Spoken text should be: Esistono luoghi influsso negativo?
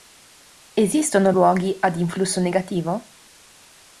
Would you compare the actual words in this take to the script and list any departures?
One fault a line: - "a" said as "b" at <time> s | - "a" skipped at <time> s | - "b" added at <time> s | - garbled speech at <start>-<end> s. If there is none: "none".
- "ad" added at 1.8 s